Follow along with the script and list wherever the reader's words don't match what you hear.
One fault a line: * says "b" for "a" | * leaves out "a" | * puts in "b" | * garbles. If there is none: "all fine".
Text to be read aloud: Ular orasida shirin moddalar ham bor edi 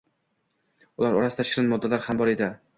all fine